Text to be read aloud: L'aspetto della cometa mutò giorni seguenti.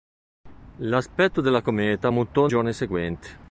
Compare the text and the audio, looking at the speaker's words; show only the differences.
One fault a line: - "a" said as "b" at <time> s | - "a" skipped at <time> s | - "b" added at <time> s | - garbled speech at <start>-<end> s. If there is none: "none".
none